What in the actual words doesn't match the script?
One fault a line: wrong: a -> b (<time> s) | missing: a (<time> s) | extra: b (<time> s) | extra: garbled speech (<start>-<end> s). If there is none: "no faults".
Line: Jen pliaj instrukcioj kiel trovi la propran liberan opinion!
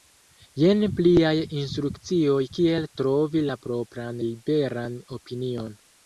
no faults